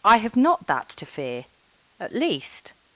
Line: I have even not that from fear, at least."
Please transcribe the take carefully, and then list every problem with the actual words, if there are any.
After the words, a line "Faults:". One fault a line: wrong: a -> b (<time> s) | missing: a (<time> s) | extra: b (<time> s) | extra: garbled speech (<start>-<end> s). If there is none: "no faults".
I have not that to fear, at least."
Faults:
missing: even (0.3 s)
wrong: from -> to (0.9 s)